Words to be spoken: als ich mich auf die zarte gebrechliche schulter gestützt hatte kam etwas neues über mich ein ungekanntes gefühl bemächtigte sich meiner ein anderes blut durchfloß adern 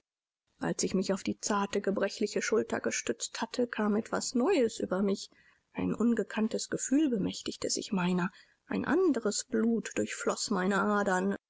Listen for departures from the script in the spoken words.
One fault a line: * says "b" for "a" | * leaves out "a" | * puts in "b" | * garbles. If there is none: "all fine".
* puts in "meine"